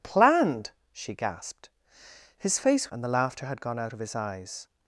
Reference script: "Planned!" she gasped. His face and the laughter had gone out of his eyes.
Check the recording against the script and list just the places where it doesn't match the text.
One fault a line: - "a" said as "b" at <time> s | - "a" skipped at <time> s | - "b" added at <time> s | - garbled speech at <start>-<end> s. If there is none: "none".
none